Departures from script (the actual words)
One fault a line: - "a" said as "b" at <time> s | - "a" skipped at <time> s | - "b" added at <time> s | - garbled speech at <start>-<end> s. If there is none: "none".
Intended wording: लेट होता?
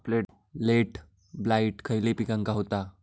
- "ब्लाइट खयले पिकांका" added at 1.3 s